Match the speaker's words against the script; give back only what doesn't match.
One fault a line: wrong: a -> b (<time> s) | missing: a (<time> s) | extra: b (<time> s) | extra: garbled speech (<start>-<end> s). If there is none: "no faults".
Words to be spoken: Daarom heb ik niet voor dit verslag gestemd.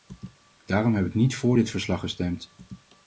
no faults